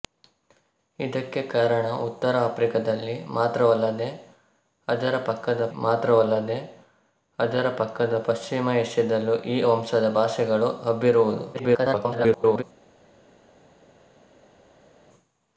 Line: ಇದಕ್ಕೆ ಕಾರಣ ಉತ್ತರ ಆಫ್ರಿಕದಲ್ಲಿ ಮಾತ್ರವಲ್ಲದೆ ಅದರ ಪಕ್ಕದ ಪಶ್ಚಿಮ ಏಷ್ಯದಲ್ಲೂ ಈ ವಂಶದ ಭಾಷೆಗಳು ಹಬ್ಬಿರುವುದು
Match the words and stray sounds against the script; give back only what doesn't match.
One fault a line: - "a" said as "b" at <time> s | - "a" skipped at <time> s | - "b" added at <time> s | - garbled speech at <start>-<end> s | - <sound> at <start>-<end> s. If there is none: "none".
- "ಮಾತ್ರವಲ್ಲದೆ ಅದರ ಪಕ್ಕದ" added at 5.8 s
- garbled speech at 11.5-12.6 s